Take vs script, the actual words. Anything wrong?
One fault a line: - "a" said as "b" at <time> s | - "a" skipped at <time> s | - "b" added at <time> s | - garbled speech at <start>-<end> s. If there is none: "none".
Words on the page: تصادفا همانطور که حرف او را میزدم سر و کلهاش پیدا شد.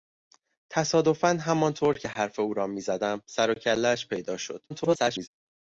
- garbled speech at 4.7-5.3 s